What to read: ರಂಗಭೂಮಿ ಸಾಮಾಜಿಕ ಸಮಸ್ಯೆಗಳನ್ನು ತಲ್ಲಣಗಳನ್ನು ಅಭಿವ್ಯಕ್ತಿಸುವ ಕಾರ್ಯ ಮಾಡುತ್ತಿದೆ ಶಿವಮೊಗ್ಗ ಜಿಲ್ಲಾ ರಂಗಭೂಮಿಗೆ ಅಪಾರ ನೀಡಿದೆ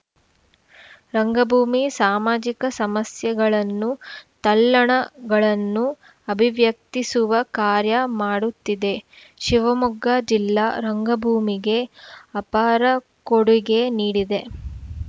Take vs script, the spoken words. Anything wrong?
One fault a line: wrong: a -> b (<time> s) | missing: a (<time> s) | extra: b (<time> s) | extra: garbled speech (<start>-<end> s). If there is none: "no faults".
extra: ಕೊಡುಗೆ (13.3 s)